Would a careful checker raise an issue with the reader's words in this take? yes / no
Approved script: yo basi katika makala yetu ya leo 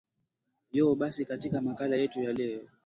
no